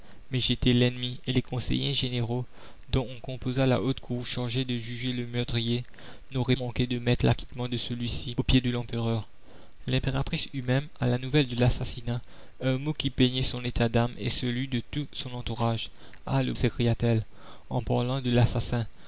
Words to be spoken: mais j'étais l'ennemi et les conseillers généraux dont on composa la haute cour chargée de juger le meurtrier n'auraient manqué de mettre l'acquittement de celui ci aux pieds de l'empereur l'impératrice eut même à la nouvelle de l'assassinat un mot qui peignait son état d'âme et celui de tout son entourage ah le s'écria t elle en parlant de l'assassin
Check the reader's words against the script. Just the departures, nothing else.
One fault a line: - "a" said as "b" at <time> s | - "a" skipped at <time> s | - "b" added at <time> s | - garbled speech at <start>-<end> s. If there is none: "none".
none